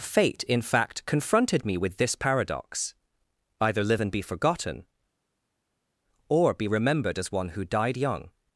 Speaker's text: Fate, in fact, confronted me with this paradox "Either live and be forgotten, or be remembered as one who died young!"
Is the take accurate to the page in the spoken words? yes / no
yes